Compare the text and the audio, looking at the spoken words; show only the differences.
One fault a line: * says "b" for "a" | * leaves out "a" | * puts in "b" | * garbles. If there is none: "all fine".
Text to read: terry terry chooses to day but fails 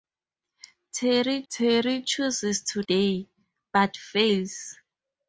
all fine